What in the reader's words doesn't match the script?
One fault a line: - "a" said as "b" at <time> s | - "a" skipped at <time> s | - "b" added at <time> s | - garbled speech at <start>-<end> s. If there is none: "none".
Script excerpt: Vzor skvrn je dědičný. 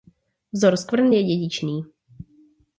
none